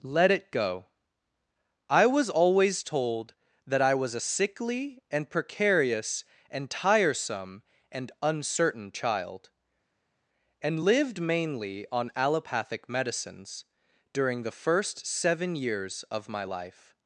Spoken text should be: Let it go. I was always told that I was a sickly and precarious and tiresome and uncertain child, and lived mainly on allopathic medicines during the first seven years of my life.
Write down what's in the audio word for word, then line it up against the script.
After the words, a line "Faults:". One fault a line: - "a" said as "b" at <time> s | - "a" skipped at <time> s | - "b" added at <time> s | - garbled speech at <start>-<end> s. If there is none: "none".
Let it go. I was always told that I was a sickly and precarious and tiresome and uncertain child, and lived mainly on allopathic medicines during the first seven years of my life.
Faults:
none